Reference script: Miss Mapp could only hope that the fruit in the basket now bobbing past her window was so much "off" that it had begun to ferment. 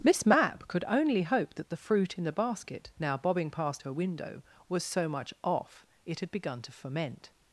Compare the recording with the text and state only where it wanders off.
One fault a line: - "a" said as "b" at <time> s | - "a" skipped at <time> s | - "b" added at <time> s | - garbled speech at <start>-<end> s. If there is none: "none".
- "that" skipped at 5.8 s